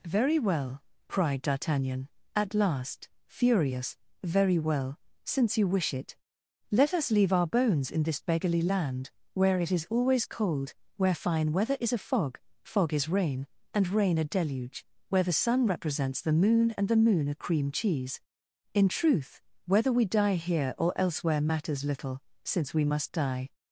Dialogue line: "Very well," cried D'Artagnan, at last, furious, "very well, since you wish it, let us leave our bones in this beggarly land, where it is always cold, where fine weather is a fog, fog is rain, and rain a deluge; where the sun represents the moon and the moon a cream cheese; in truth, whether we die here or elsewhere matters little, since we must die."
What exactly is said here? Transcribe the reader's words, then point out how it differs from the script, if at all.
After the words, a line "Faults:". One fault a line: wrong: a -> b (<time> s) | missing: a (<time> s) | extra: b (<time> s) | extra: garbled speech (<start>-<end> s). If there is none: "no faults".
"Very well," cried D'Artagnan, at last, furious, "very well, since you wish it, let us leave our bones in this beggarly land, where it is always cold, where fine weather is a fog, fog is rain, and rain a deluge; where the sun represents the moon and the moon a cream cheese; in truth, whether we die here or elsewhere matters little, since we must die."
Faults:
no faults